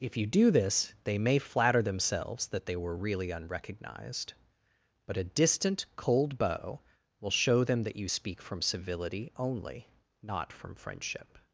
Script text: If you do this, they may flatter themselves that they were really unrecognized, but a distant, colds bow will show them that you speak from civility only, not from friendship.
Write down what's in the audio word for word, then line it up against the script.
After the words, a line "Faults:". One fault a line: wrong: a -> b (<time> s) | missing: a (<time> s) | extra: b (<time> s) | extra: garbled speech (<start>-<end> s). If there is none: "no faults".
If you do this, they may flatter themselves that they were really unrecognized, but a distant, cold bow will show them that you speak from civility only, not from friendship.
Faults:
wrong: colds -> cold (6.0 s)